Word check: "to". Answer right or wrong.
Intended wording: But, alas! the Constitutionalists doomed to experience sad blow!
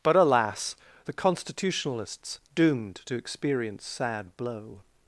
right